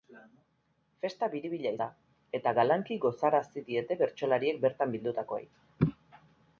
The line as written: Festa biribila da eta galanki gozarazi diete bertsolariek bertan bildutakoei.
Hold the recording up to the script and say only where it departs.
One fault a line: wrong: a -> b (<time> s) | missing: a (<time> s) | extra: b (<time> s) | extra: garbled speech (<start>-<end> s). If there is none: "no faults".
no faults